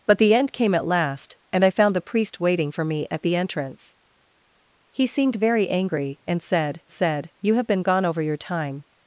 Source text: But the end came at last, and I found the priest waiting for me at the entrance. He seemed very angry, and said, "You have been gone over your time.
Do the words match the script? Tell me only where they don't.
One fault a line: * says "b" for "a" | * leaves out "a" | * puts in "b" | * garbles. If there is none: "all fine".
* puts in "said"